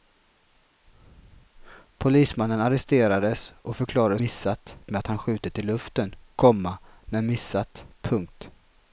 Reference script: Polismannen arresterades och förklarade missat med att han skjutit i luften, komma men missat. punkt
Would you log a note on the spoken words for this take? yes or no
no